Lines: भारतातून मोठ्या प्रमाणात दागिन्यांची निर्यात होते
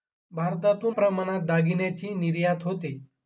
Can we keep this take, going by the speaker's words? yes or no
no